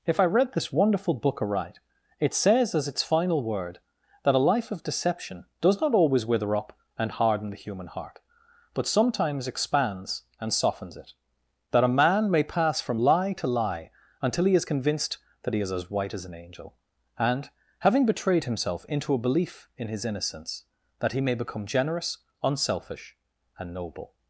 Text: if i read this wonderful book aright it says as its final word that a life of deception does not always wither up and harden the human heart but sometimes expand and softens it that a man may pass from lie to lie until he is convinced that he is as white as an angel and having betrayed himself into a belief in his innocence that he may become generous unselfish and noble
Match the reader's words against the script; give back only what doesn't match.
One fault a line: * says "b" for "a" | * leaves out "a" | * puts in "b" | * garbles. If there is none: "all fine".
* says "expands" for "expand"